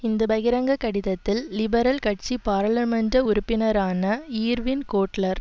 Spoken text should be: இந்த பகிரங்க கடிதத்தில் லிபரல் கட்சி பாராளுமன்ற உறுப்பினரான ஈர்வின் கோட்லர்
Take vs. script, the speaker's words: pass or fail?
pass